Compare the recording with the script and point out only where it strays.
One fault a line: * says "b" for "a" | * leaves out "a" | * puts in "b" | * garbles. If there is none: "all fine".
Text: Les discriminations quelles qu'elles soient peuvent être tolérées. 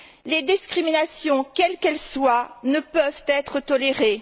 * puts in "ne"